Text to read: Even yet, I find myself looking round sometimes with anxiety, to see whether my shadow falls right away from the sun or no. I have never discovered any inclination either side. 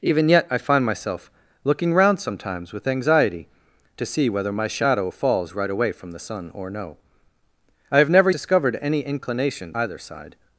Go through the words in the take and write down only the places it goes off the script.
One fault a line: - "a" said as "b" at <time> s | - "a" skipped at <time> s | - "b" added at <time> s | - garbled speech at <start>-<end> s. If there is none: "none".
none